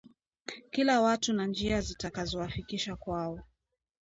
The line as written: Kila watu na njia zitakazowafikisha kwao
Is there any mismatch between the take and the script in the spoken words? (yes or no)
no